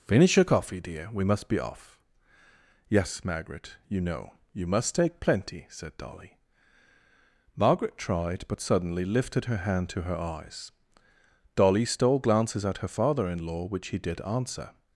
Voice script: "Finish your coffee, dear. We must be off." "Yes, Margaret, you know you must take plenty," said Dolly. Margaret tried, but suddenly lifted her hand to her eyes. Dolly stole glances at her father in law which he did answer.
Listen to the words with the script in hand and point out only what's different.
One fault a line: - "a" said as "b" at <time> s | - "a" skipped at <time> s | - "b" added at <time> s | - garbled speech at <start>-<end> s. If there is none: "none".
none